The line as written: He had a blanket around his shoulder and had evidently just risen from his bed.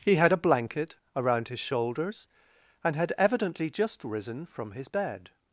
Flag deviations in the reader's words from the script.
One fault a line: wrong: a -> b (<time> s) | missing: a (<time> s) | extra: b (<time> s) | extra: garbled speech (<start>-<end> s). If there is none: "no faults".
wrong: shoulder -> shoulders (1.6 s)